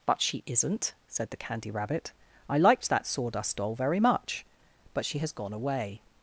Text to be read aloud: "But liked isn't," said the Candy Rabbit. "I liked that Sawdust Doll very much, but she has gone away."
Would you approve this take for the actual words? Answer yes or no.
no